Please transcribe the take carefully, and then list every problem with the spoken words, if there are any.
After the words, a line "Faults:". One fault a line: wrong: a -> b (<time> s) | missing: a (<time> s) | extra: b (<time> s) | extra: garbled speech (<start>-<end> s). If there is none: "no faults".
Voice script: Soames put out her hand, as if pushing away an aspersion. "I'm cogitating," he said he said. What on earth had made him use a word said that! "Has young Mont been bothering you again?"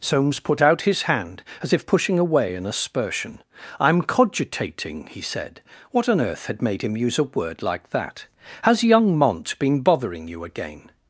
Soames put out his hand, as if pushing away an aspersion. "I'm cogitating," he said. What on earth had made him use a word like that! "Has young Mont been bothering you again?"
Faults:
wrong: her -> his (0.8 s)
missing: he said (5.6 s)
wrong: said -> like (7.6 s)